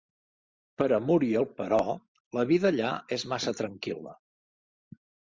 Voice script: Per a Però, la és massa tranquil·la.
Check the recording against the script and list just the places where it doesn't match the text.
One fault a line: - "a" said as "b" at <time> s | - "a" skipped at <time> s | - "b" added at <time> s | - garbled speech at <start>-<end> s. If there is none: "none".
- "Muriel" added at 1.1 s
- "vida allà" added at 2.5 s